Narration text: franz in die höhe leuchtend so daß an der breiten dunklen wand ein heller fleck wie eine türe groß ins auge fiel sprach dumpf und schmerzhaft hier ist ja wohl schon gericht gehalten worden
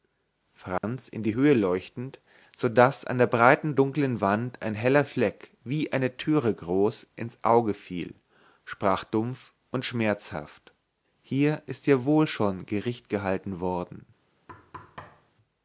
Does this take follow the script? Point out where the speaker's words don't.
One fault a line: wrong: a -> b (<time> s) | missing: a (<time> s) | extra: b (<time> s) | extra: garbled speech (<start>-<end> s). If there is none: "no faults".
no faults